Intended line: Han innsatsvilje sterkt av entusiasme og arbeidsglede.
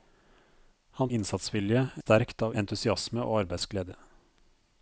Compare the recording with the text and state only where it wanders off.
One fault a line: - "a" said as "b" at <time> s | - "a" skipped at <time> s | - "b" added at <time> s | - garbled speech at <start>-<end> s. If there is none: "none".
none